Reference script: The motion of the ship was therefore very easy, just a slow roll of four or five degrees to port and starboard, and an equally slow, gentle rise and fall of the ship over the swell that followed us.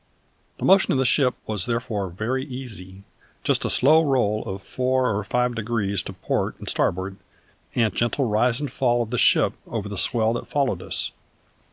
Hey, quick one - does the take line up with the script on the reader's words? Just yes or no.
no